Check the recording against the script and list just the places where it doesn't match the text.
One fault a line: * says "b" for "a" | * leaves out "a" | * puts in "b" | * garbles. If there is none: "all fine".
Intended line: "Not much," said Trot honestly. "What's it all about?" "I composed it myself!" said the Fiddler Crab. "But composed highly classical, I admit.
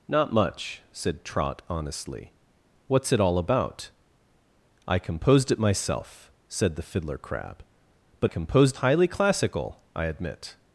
all fine